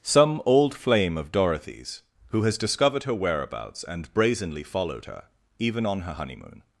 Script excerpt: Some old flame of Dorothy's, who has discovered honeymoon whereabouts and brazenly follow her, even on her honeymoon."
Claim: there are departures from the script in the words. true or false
true